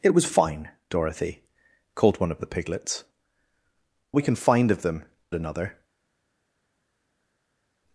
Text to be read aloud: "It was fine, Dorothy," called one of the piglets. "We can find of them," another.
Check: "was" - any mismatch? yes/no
no